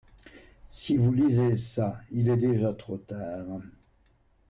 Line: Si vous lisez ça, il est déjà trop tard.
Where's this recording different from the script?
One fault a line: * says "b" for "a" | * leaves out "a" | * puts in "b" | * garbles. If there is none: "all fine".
all fine